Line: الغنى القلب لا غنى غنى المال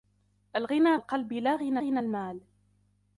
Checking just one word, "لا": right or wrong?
right